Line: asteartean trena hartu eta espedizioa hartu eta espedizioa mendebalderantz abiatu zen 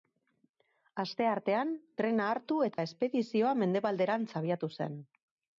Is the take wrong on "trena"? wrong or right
right